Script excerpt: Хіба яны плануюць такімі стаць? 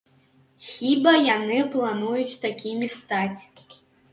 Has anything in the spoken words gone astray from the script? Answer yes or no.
no